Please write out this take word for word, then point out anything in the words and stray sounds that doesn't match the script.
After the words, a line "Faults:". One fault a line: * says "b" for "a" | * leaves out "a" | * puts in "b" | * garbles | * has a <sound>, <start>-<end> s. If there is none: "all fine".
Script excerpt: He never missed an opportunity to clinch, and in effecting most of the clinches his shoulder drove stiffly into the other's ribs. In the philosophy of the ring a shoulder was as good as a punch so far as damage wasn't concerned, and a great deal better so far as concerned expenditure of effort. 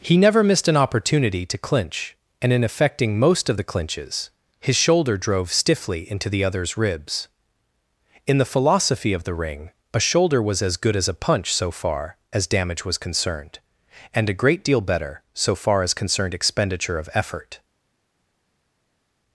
He never missed an opportunity to clinch, and in effecting most of the clinches his shoulder drove stiffly into the other's ribs. In the philosophy of the ring a shoulder was as good as a punch so far as damage was concerned, and a great deal better so far as concerned expenditure of effort.
Faults:
* says "was" for "wasn't"